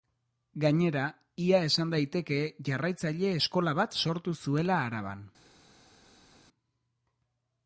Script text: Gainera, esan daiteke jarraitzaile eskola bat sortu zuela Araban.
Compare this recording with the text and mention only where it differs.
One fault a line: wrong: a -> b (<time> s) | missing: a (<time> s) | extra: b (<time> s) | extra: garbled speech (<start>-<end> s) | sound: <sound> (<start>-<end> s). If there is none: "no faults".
extra: ia (1.5 s)